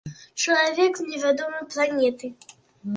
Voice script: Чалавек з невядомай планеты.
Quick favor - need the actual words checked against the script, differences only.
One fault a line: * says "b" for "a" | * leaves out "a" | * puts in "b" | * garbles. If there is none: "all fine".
all fine